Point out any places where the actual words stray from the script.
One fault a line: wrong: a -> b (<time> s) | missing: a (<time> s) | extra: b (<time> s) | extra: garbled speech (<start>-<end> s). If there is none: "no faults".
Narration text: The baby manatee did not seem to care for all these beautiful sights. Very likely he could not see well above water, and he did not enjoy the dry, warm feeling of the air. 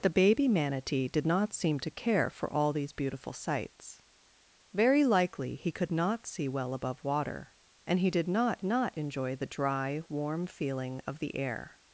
extra: not (8.6 s)